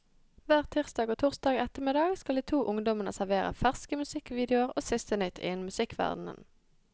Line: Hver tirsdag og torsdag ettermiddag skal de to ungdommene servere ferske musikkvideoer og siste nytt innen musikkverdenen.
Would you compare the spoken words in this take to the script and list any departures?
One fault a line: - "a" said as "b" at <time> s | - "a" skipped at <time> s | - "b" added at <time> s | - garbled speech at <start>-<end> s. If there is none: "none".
none